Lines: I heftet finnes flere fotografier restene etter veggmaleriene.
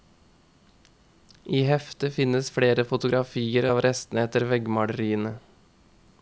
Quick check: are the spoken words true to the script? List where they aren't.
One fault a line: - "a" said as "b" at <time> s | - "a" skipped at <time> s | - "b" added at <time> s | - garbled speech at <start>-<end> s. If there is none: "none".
- "av" added at 3.7 s